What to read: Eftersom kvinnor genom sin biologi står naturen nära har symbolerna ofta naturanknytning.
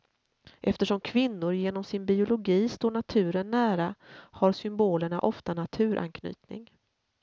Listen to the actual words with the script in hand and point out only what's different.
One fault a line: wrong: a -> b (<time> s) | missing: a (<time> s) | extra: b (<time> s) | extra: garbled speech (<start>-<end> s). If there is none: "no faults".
no faults